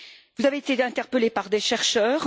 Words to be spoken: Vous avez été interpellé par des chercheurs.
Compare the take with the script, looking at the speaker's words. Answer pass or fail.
pass